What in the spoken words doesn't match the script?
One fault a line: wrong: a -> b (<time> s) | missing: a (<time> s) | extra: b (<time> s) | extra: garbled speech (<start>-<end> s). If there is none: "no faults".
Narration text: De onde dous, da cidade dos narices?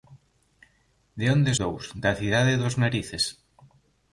no faults